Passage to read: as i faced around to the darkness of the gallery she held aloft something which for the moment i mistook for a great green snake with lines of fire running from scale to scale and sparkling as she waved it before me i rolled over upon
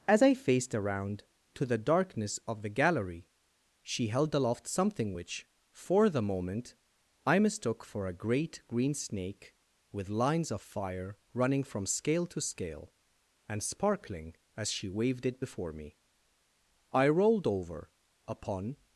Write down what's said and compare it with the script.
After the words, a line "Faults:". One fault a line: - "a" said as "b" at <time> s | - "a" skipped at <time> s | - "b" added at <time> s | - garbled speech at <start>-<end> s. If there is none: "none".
as i faced around to the darkness of the gallery she held aloft something which for the moment i mistook for a great green snake with lines of fire running from scale to scale and sparkling as she waved it before me i rolled over upon
Faults:
none